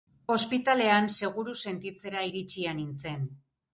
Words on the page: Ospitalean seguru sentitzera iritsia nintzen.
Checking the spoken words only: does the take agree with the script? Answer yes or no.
yes